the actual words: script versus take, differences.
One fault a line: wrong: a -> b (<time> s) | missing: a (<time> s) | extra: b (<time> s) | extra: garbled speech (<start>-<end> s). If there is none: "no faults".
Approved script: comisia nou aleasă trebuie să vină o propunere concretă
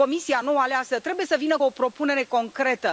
no faults